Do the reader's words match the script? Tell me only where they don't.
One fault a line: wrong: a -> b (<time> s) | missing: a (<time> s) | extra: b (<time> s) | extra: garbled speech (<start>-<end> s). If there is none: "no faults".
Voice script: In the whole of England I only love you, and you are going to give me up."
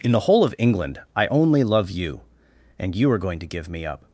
no faults